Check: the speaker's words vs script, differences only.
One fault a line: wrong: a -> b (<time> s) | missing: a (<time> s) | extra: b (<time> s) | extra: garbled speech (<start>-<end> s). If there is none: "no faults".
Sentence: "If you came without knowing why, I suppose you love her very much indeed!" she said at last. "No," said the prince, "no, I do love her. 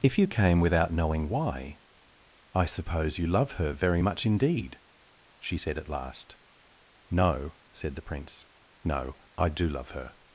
no faults